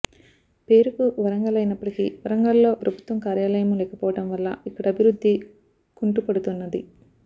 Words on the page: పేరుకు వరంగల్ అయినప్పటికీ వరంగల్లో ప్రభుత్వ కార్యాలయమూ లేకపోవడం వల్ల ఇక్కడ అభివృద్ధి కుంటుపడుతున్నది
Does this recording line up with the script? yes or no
yes